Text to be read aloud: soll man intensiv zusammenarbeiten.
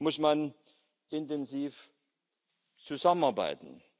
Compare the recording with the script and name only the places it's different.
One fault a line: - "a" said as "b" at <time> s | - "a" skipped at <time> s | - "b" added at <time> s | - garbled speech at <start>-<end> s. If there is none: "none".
- "soll" said as "muss" at 0.0 s